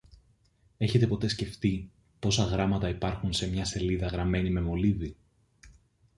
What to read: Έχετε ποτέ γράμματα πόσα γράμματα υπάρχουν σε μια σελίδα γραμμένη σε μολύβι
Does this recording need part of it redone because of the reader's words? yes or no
yes